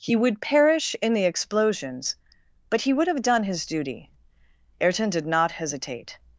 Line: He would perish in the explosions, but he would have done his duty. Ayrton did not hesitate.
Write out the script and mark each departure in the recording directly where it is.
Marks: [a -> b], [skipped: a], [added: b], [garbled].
He would perish in the explosions, but he would have done his duty. Ayrton did not hesitate.